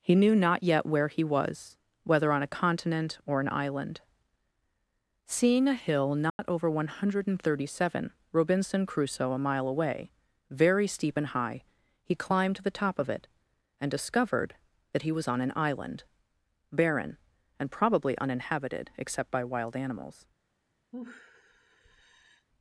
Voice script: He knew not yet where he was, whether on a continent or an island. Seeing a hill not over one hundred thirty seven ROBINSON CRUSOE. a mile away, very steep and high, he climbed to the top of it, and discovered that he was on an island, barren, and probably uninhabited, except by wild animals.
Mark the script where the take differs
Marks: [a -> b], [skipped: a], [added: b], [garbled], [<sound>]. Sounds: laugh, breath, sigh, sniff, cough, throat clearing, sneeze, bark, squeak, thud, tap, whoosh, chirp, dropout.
He knew not yet where he was, whether on a continent or an island. Seeing a hill not [dropout] over one hundred thirty seven ROBINSON CRUSOE. a mile away, very steep and high, he climbed to the top of it, and discovered that he was on an island, barren, and probably uninhabited, except by wild animals. [sigh]